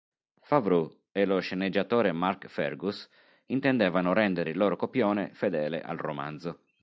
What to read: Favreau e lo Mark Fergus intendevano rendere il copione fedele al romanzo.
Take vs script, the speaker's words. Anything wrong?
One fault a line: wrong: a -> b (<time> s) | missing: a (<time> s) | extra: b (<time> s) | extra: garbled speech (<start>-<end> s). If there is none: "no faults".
extra: sceneggiatore (1.4 s)
extra: loro (4.6 s)